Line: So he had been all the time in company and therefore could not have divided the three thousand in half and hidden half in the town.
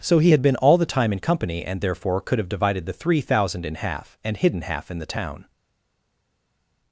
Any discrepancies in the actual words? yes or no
yes